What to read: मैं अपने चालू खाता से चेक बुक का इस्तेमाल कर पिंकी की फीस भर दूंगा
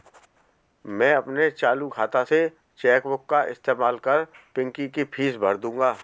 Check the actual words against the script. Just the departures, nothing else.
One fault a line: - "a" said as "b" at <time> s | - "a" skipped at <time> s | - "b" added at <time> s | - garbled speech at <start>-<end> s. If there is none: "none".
none